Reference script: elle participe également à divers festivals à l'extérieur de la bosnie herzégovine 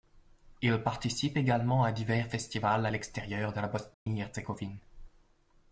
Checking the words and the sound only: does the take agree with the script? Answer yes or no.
no